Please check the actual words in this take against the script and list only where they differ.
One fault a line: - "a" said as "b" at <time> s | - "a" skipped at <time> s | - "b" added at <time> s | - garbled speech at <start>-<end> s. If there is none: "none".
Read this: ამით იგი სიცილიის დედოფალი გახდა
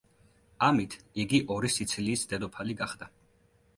- "ორი" added at 1.6 s